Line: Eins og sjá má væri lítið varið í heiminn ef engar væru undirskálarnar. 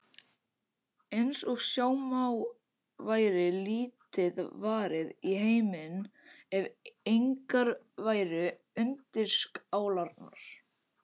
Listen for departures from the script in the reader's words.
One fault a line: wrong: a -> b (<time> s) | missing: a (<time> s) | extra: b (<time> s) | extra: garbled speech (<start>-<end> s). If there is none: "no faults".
no faults